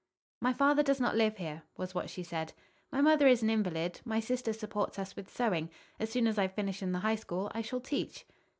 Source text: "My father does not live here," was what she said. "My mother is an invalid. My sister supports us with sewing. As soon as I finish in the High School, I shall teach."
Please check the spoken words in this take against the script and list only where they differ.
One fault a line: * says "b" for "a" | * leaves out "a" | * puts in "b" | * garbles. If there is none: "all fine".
all fine